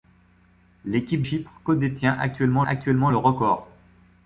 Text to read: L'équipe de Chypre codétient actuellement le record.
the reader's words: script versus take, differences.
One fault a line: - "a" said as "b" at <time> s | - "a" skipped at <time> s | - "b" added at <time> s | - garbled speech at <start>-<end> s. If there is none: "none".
- "de" skipped at 1.2 s
- "actuellement" added at 2.7 s